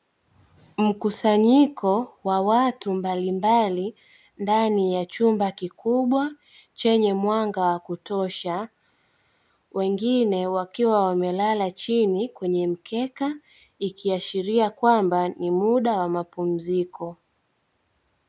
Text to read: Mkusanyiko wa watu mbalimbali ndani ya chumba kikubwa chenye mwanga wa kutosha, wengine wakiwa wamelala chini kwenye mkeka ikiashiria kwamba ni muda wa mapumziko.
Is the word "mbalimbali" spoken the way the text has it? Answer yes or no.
yes